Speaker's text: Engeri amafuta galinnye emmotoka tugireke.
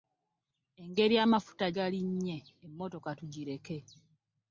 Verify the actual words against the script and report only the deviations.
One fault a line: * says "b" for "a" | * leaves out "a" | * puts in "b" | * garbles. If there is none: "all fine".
all fine